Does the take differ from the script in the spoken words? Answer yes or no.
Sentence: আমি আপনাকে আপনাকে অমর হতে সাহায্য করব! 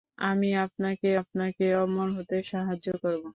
no